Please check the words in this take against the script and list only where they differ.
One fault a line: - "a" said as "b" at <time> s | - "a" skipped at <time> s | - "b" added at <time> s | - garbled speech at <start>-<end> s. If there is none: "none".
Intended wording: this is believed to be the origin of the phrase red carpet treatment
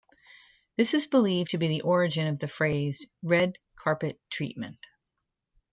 none